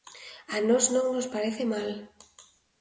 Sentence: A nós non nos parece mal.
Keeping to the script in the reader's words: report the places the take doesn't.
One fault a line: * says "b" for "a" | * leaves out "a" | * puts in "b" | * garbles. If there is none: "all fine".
all fine